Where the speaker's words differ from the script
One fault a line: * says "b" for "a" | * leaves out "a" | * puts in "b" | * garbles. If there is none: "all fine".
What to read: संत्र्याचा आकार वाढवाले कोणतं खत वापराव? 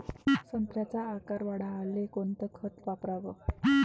all fine